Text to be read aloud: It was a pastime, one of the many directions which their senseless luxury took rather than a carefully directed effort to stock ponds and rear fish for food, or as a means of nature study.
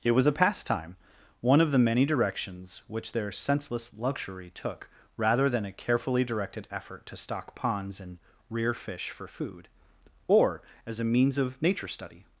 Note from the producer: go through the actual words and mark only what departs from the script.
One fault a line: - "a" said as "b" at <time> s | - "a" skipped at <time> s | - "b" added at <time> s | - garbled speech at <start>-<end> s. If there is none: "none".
none